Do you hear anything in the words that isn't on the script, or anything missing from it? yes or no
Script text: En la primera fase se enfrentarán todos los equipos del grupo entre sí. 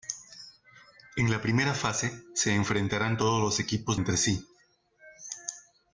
yes